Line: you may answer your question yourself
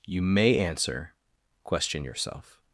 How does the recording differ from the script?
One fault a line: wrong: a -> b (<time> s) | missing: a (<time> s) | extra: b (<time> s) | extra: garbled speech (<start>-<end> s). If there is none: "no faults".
missing: your (1.1 s)